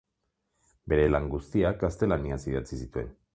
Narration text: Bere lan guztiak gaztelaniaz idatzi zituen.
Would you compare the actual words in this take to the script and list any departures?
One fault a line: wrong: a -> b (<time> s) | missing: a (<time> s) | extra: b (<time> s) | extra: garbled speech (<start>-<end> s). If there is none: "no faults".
no faults